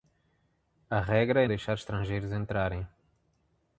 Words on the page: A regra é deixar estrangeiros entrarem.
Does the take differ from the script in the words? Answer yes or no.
no